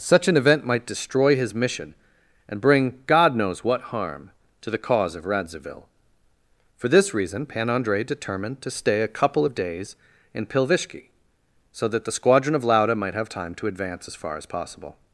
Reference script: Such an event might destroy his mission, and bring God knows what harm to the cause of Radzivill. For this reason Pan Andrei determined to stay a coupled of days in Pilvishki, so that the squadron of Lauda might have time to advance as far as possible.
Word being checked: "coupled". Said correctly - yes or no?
no